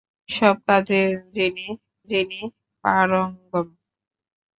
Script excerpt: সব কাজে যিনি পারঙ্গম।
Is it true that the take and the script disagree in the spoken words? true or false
true